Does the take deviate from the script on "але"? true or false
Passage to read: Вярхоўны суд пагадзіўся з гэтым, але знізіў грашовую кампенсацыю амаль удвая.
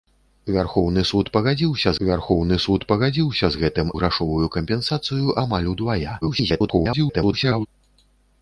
true